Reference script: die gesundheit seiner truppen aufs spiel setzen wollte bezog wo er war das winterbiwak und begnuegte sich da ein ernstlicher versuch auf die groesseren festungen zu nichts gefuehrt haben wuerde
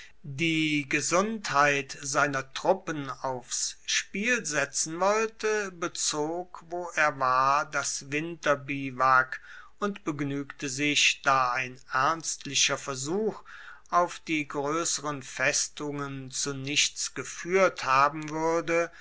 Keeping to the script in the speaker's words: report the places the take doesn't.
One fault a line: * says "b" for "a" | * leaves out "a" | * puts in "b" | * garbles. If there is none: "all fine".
all fine